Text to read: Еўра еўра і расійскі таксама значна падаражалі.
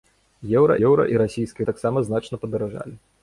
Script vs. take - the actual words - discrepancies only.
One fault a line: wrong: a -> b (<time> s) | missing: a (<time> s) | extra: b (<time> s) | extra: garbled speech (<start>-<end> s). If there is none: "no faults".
no faults